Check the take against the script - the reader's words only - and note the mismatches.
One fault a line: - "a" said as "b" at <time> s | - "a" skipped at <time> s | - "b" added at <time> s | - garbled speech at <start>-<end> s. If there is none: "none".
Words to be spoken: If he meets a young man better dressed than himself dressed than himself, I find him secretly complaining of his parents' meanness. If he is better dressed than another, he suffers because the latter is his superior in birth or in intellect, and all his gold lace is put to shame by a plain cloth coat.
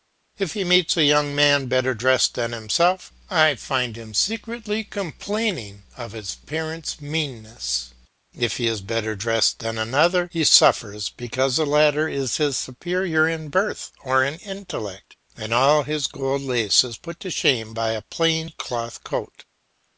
- "dressed than himself" skipped at 3.1 s